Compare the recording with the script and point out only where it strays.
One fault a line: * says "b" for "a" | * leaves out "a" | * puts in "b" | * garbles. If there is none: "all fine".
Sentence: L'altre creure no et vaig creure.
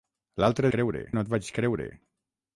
all fine